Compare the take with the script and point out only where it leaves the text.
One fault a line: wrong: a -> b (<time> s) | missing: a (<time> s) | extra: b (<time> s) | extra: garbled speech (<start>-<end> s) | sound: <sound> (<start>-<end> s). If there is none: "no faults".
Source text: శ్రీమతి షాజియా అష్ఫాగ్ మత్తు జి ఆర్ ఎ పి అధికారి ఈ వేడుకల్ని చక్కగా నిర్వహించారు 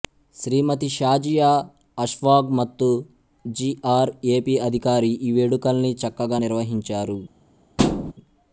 sound: thud (7.8-8.1 s)